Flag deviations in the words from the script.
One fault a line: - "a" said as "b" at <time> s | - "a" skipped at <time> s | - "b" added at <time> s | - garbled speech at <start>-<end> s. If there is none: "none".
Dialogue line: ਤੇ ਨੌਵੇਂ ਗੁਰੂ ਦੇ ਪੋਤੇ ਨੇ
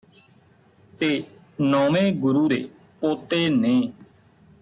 none